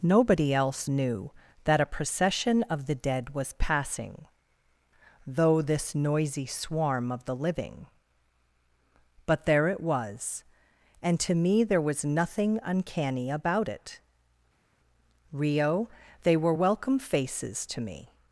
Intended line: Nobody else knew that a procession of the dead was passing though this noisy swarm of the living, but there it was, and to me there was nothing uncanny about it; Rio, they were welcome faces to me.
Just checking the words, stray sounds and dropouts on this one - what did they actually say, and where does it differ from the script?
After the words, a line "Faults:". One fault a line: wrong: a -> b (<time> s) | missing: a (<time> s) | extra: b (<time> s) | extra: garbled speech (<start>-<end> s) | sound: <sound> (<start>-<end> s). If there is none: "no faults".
Nobody else knew that a procession of the dead was passing though this noisy swarm of the living, but there it was, and to me there was nothing uncanny about it; Rio, they were welcome faces to me.
Faults:
no faults